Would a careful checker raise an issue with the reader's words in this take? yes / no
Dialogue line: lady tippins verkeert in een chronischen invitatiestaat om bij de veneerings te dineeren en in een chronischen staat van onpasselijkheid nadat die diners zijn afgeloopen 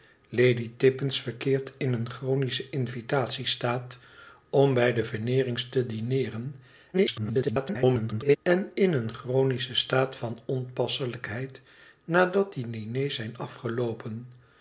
yes